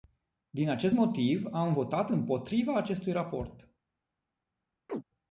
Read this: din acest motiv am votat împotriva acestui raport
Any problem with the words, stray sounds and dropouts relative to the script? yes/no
yes